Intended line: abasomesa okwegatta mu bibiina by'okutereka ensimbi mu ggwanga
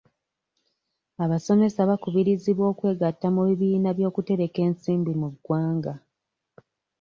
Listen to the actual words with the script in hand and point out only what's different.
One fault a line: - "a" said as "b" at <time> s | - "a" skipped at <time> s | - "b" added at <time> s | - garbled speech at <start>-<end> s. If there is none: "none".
- "bakubirizibwa" added at 1.9 s